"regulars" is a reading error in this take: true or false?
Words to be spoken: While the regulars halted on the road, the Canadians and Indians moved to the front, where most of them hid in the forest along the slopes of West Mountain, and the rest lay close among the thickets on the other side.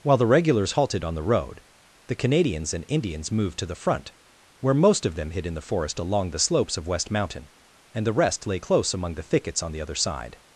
false